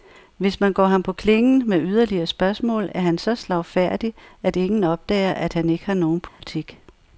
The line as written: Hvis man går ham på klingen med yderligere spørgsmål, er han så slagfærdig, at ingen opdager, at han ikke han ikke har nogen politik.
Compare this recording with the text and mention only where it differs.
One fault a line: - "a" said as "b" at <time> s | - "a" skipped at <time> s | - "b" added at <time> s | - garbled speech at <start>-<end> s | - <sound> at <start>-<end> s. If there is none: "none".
- "han ikke" skipped at 5.8 s
- dropout at 6.3-6.4 s